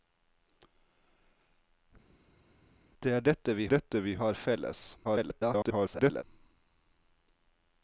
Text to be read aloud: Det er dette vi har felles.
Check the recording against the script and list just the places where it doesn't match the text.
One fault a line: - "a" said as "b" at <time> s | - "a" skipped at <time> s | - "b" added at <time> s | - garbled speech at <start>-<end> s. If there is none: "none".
- "dette vi" added at 3.6 s
- garbled speech at 5.0-6.2 s